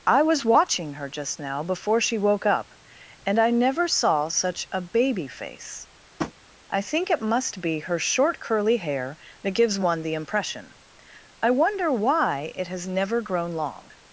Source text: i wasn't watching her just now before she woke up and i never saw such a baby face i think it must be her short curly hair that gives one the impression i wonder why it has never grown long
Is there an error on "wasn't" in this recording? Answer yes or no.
yes